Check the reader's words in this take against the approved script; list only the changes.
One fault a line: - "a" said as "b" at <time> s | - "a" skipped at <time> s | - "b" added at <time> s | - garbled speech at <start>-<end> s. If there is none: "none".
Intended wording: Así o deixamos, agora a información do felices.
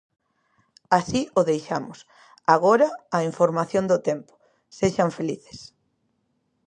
- "tempo sexan" added at 4.1 s